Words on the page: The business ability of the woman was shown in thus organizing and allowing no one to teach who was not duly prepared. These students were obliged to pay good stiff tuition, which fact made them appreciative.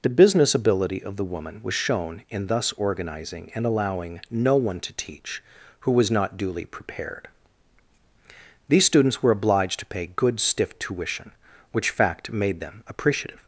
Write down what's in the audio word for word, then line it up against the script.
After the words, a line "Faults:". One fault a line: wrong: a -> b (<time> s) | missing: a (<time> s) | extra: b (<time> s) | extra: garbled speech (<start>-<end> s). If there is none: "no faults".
The business ability of the woman was shown in thus organizing and allowing no one to teach who was not duly prepared. These students were obliged to pay good stiff tuition, which fact made them appreciative.
Faults:
no faults